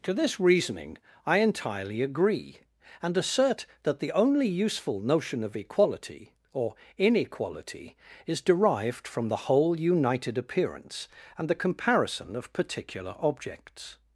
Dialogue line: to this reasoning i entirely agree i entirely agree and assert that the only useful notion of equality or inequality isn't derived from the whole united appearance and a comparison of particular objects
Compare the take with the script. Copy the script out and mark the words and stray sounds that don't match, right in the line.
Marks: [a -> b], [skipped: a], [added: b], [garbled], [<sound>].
to this reasoning i entirely agree [skipped: i entirely agree] and assert that the only useful notion of equality or inequality [isn't -> is] derived from the whole united appearance and [a -> the] comparison of particular objects